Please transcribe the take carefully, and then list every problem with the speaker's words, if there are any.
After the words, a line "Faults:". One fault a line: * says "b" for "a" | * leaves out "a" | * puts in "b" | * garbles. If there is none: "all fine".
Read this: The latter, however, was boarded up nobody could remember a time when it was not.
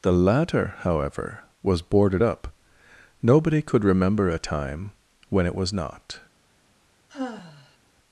The latter, however, was boarded up nobody could remember a time when it was not.
Faults:
all fine